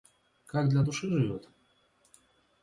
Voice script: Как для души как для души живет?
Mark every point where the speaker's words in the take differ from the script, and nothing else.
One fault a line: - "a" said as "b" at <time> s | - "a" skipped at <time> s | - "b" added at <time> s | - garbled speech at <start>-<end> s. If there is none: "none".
- "как для души" skipped at 1.1 s